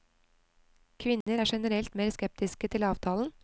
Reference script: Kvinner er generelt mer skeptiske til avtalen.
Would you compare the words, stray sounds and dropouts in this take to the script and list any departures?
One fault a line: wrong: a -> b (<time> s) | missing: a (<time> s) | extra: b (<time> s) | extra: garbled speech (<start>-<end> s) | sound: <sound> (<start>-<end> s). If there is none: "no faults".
sound: dropout (1.2-1.3 s)